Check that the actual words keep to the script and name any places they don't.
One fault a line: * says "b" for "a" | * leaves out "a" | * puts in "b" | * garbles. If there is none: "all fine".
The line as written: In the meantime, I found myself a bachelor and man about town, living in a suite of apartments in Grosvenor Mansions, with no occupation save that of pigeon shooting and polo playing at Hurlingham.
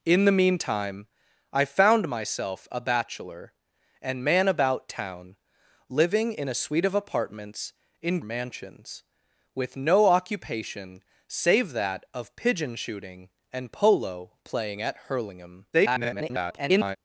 * leaves out "Grosvenor"
* garbles